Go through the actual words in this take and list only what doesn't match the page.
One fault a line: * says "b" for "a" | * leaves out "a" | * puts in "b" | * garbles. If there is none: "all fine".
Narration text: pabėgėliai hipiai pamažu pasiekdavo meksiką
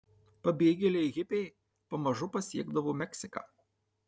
all fine